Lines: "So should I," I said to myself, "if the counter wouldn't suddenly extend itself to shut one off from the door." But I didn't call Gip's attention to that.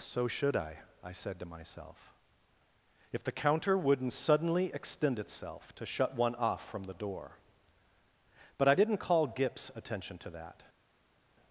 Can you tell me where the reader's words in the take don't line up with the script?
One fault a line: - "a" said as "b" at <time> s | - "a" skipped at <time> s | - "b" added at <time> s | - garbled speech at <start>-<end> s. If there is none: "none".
none